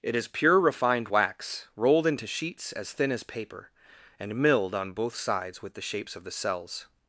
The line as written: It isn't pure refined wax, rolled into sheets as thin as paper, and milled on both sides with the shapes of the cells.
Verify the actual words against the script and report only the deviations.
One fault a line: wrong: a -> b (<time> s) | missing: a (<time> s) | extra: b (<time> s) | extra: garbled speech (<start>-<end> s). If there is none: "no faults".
wrong: isn't -> is (0.1 s)